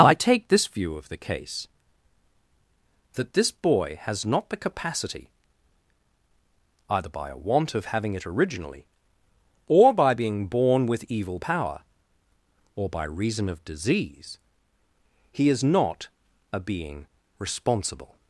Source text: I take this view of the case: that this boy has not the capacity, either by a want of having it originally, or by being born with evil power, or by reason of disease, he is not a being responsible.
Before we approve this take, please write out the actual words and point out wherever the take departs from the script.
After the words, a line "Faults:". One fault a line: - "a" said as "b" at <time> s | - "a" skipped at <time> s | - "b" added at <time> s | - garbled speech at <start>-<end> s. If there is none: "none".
I take this view of the case: that this boy has not the capacity, either by a want of having it originally, or by being born with evil power, or by reason of disease, he is not a being responsible.
Faults:
none